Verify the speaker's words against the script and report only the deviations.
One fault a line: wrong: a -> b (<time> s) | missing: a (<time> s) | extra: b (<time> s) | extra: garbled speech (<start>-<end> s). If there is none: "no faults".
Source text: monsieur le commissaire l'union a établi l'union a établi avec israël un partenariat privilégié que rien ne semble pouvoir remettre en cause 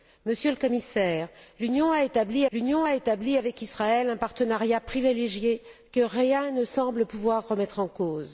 no faults